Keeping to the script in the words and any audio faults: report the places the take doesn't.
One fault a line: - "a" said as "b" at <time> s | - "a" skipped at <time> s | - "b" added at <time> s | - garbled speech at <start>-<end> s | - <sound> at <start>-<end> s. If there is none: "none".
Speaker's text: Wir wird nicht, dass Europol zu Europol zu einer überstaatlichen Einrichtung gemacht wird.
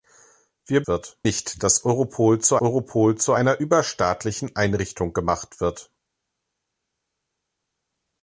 none